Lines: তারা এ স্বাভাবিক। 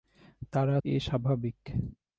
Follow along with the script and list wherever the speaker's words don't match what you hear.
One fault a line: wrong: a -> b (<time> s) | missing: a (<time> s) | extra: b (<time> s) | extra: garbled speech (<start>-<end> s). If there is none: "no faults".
no faults